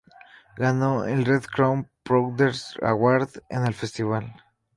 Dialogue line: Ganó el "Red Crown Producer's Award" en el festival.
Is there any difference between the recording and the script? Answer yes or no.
no